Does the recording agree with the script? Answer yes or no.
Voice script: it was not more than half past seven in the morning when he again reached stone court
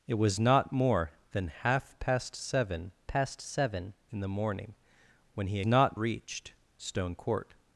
no